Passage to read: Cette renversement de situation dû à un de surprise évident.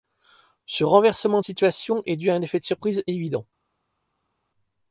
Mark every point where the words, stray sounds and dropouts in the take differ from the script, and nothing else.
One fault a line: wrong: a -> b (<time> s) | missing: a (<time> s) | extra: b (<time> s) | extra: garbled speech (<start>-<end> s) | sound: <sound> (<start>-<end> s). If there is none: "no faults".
wrong: Cette -> Ce (0.7 s)
extra: est (2.0 s)
extra: effet (2.4 s)